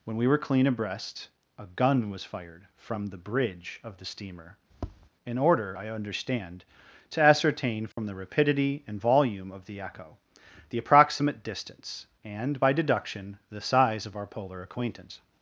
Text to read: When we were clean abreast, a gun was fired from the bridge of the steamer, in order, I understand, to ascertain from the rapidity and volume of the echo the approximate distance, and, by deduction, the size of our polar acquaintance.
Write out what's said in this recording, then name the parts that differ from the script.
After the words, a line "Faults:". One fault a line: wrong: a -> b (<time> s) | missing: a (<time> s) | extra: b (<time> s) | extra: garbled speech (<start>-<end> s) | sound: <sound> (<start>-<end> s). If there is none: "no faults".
When we were clean abreast, a gun was fired from the bridge of the steamer, in order, I understand, to ascertain from the rapidity and volume of the echo the approximate distance, and, by deduction, the size of our polar acquaintance.
Faults:
sound: tap (4.7-5.1 s)
sound: dropout (7.9-8.0 s)